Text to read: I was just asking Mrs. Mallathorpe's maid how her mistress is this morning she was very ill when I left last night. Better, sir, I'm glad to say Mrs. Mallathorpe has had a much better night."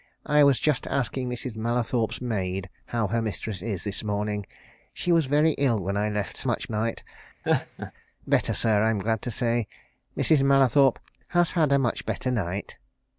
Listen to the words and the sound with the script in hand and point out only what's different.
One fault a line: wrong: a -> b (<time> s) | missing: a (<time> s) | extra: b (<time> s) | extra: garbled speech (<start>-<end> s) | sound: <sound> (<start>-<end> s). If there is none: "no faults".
wrong: last -> much (6.4 s)
sound: laugh (7.4-7.9 s)